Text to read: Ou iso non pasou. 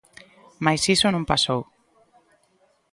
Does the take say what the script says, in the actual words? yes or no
no